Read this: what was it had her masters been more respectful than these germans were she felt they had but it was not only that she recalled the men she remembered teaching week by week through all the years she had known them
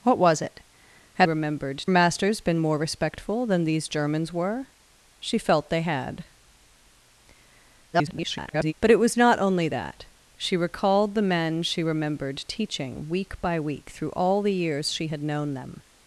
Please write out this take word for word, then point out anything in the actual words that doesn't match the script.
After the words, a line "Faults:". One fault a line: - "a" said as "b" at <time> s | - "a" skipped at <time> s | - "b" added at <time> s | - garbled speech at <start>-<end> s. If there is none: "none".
what was it had remembered masters been more respectful than these germans were she felt they had [garbled] but it was not only that she recalled the men she remembered teaching week by week through all the years she had known them
Faults:
- "her" said as "remembered" at 1.2 s
- garbled speech at 7.9-8.7 s